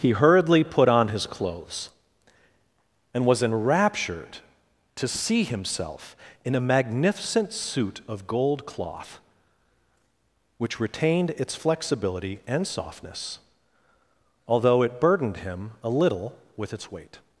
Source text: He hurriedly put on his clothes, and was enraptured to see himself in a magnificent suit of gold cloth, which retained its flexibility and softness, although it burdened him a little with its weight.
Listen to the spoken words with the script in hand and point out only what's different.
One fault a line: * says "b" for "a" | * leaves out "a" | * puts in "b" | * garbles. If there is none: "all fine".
all fine